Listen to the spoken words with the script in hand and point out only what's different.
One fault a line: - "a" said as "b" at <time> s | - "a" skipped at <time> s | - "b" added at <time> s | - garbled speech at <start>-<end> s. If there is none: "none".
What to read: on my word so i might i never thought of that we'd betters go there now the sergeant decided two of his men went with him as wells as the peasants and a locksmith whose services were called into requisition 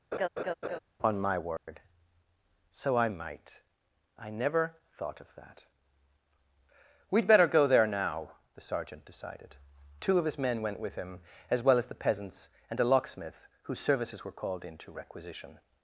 - "betters" said as "better" at 7.3 s
- "wells" said as "well" at 11.6 s